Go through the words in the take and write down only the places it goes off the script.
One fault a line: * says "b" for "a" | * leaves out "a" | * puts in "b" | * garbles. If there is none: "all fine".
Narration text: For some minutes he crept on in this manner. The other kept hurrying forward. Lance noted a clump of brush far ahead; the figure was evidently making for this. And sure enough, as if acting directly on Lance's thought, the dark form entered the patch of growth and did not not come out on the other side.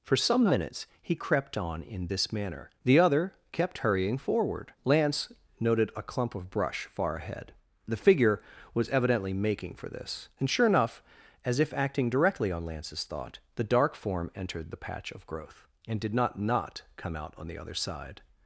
all fine